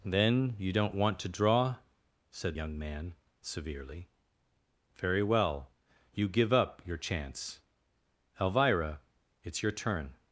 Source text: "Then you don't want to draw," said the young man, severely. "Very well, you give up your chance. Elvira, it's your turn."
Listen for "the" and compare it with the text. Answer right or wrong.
wrong